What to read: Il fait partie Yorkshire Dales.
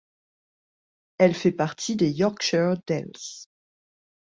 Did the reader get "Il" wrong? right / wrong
wrong